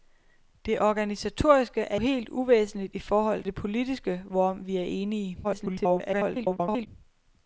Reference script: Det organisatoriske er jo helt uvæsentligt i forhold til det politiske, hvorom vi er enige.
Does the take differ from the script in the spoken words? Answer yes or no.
yes